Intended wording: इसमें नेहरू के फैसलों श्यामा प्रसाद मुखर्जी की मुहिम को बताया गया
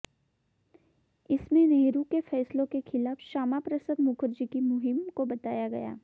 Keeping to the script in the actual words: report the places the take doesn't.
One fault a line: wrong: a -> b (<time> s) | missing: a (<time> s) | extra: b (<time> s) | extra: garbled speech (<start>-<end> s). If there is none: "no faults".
extra: के खिलाफ (2.6 s)